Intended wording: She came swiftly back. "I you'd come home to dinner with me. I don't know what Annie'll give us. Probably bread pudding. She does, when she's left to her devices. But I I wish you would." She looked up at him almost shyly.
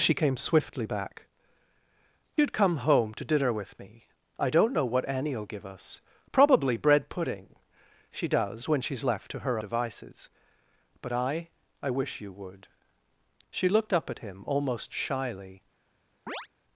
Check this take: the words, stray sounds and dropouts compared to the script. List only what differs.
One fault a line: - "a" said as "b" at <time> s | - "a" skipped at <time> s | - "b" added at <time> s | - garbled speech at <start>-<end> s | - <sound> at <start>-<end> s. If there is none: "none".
- chirp at 16.3-16.5 s